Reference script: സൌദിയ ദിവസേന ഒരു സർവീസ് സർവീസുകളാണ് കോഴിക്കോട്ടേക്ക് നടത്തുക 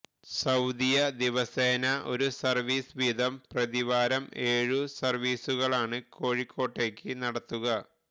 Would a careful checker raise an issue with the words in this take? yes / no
yes